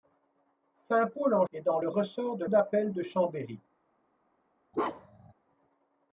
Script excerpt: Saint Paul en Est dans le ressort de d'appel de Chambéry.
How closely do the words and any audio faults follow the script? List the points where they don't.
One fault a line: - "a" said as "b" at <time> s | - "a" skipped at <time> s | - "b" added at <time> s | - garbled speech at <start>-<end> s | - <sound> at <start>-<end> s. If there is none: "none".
- bark at 4.7-5.3 s